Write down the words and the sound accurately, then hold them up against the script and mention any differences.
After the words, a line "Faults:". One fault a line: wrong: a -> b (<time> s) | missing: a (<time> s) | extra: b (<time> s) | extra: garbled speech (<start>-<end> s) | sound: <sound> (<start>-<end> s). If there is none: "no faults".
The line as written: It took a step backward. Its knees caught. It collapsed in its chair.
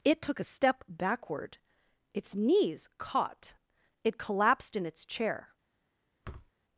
It took a step backward. Its knees caught. It collapsed in its chair.
Faults:
sound: thud (6.2-6.5 s)